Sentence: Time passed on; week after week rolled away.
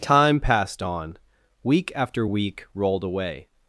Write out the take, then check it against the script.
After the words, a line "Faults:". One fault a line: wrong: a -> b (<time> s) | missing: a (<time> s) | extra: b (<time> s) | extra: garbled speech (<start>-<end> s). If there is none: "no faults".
Time passed on; week after week rolled away.
Faults:
no faults